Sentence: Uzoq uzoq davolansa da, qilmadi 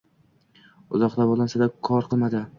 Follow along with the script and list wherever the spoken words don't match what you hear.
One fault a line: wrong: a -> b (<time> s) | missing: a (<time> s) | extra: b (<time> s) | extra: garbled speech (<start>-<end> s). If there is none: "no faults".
missing: uzoq (1.2 s)
extra: kor (1.9 s)